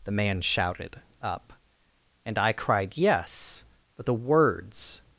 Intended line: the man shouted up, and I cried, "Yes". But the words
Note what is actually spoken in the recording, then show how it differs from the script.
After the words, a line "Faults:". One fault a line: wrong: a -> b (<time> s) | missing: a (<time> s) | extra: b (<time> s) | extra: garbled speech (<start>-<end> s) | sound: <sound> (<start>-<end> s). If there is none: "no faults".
the man shouted up, and I cried, "Yes". But the words
Faults:
no faults